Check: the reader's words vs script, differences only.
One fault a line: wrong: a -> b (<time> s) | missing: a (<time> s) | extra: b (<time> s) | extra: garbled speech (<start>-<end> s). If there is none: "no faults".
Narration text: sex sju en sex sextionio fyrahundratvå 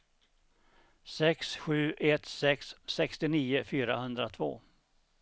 wrong: en -> ett (2.0 s)